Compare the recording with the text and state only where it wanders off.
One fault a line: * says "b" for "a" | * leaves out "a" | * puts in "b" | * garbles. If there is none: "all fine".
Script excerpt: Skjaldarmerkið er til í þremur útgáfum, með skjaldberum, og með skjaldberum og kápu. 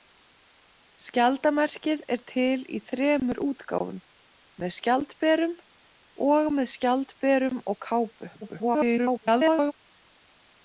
* garbles